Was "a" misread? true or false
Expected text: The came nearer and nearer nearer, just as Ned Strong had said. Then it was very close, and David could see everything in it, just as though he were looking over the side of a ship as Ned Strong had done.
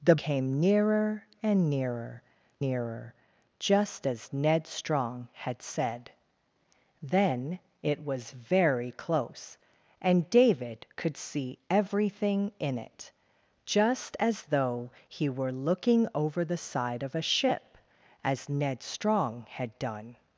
false